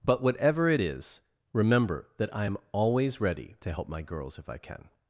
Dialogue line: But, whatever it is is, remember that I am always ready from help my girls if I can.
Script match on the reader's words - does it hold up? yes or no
no